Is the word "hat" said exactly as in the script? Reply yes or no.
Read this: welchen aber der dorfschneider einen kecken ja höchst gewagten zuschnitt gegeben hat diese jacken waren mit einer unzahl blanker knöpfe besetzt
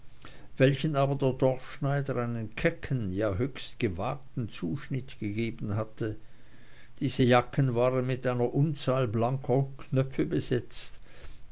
no